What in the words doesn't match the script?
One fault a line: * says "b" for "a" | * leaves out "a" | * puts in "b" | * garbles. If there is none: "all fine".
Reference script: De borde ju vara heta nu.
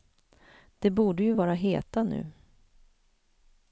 all fine